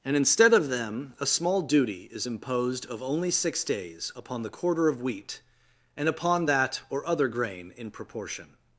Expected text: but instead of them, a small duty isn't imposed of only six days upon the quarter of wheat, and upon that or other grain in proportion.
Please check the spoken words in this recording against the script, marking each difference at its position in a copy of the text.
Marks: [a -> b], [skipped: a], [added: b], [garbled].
[but -> and] instead of them, a small duty [isn't -> is] imposed of only six days upon the quarter of wheat, and upon that or other grain in proportion.